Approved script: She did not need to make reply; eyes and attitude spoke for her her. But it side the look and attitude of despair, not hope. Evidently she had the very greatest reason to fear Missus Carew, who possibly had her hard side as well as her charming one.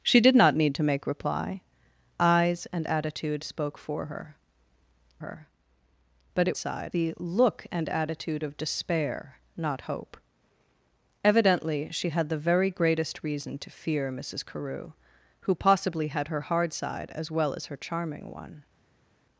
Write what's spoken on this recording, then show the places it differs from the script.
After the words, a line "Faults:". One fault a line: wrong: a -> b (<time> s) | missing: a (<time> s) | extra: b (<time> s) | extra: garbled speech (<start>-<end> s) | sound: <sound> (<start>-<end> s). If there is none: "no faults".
She did not need to make reply; eyes and attitude spoke for her her. But it side the look and attitude of despair, not hope. Evidently she had the very greatest reason to fear Missus Carew, who possibly had her hard side as well as her charming one.
Faults:
no faults